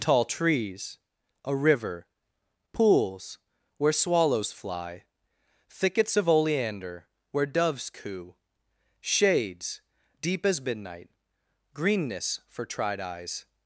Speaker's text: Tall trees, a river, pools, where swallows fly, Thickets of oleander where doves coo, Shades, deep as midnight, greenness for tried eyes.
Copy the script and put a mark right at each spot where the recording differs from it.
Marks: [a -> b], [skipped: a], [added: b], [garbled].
Tall trees, a river, pools, where swallows fly, Thickets of oleander where doves coo, Shades, deep as midnight, greenness for tried eyes.